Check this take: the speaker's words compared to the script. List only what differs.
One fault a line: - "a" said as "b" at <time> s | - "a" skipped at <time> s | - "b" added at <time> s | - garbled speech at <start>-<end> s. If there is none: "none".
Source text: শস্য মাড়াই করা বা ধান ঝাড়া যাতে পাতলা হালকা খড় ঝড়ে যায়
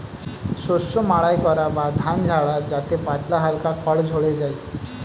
none